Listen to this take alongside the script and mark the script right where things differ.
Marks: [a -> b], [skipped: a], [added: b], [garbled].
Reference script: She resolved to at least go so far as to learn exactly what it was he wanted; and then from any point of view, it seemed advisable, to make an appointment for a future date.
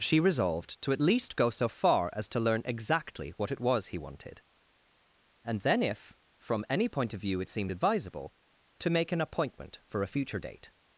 She resolved to at least go so far as to learn exactly what it was he wanted; and then [added: if] from any point of view, it seemed advisable, to make an appointment for a future date.